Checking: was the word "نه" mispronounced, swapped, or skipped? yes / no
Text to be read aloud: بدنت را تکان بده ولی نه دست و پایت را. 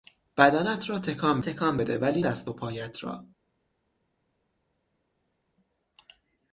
yes